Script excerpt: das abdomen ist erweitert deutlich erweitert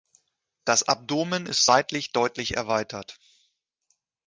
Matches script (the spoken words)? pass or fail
fail